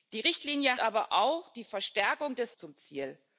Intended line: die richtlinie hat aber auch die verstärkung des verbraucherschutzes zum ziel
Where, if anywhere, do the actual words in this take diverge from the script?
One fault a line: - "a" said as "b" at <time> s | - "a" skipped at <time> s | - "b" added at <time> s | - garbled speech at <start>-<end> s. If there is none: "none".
- "hat" skipped at 0.8 s
- "verbraucherschutzes" skipped at 2.5 s